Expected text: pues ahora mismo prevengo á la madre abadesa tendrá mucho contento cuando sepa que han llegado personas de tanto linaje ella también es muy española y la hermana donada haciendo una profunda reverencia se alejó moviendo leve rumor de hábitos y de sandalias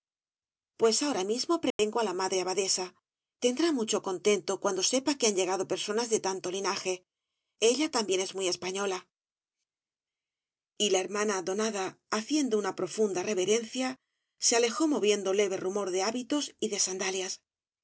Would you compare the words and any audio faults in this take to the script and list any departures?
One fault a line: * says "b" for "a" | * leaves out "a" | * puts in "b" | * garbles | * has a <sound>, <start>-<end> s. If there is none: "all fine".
* has a dropout, 1.7-1.8 s